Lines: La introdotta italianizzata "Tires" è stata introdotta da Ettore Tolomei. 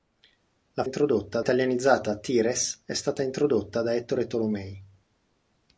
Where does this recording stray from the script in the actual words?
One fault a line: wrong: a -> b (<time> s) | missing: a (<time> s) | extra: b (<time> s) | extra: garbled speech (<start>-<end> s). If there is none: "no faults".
no faults